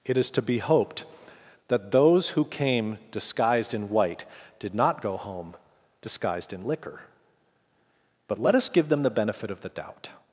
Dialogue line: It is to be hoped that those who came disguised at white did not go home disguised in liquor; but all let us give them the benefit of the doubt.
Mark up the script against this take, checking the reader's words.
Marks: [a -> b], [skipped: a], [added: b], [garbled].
It is to be hoped that those who came disguised [at -> in] white did not go home disguised in liquor; but [skipped: all] let us give them the benefit of the doubt.